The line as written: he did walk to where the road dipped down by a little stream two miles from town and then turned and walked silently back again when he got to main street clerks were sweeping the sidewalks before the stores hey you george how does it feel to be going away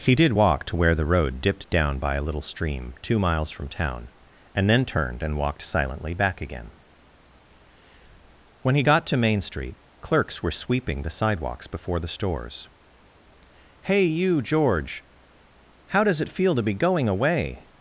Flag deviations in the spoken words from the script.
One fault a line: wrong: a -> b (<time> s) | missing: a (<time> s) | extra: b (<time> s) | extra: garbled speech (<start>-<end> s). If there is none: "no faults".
no faults